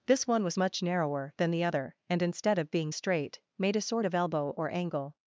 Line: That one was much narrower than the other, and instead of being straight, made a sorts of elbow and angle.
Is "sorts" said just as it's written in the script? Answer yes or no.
no